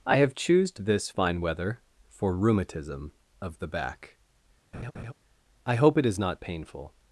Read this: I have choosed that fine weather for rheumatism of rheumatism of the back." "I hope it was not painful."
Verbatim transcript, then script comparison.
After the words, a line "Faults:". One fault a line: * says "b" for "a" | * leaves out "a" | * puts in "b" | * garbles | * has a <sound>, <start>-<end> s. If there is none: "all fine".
I have choosed this fine weather for rheumatism of the back." "I hope it is not painful."
Faults:
* says "this" for "that"
* leaves out "rheumatism of"
* has a laugh, 4.7-5.1 s
* says "is" for "was"